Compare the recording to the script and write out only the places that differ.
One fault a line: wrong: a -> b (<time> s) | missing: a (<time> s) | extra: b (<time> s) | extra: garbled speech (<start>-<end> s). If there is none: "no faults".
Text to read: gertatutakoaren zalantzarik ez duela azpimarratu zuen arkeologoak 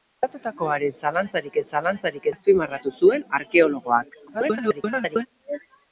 wrong: duela -> zalantzarik (1.7 s)
extra: garbled speech (4.3-5.3 s)